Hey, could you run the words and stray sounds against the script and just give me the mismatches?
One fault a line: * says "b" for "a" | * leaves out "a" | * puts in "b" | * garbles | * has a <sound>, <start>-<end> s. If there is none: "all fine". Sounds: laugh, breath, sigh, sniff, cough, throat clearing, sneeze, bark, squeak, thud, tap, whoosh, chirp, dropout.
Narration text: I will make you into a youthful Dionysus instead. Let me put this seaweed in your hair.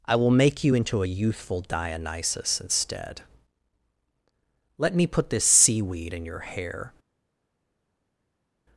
all fine